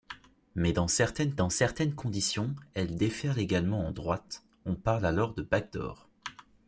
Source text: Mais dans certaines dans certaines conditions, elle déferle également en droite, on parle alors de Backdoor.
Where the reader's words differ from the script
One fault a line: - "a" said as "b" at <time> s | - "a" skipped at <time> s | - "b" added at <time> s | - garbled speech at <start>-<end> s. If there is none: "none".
none